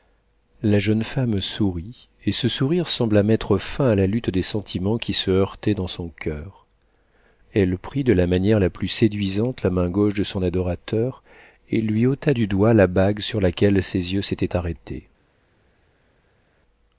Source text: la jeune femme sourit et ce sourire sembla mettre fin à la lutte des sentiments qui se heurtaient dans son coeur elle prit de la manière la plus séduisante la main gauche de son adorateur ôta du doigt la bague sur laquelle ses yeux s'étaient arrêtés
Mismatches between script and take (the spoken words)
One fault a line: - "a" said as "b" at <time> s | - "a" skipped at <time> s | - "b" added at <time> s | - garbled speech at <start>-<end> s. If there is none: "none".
- "et lui" added at 11.7 s